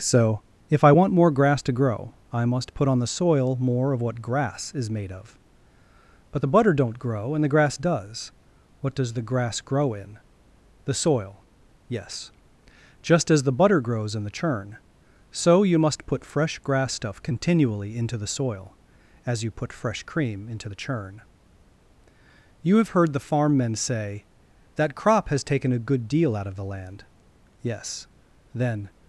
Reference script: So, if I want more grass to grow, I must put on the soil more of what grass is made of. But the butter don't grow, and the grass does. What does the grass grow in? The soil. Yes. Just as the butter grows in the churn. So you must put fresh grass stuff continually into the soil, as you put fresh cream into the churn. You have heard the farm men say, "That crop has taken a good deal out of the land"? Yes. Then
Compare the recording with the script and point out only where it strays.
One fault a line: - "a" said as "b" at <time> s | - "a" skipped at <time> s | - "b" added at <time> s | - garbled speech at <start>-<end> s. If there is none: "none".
none